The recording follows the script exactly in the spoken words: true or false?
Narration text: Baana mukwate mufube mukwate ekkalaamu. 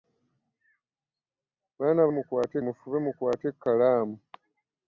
true